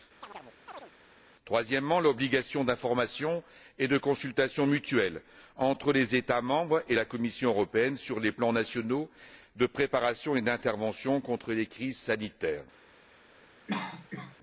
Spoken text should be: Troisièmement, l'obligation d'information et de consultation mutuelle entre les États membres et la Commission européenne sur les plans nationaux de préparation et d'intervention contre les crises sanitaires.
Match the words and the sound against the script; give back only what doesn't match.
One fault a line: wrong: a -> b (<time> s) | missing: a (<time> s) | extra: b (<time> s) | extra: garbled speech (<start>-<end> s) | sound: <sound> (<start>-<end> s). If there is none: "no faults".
sound: chirp (0.2-0.9 s)
sound: cough (13.7-14.4 s)